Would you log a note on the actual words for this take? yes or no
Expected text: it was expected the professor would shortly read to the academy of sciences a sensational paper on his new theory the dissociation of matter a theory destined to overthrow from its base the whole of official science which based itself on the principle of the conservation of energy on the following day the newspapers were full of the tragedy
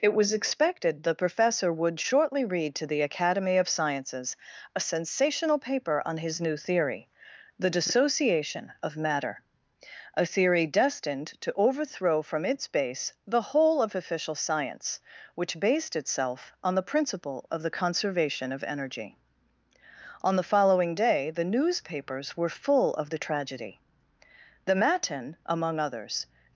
yes